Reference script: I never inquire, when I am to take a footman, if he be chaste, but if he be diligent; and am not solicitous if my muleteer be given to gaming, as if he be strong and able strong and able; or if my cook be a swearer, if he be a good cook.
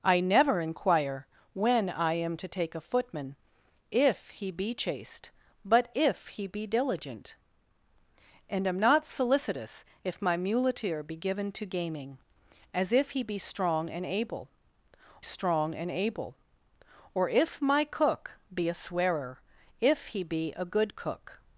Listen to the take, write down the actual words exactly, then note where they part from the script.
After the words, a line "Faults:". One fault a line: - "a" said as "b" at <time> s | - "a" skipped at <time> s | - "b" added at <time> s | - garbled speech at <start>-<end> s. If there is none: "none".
I never inquire, when I am to take a footman, if he be chaste, but if he be diligent; and am not solicitous if my muleteer be given to gaming, as if he be strong and able strong and able; or if my cook be a swearer, if he be a good cook.
Faults:
none